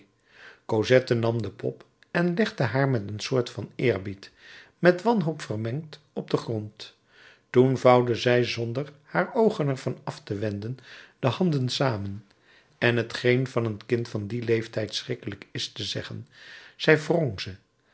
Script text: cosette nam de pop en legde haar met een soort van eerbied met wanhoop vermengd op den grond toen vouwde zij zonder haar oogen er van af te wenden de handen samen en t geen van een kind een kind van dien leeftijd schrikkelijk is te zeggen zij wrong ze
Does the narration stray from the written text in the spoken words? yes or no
yes